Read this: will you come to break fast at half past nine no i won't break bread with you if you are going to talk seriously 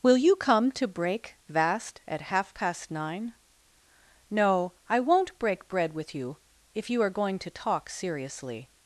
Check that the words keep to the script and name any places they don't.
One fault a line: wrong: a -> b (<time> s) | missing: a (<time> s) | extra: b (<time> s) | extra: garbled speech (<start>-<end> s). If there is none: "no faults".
wrong: fast -> vast (1.5 s)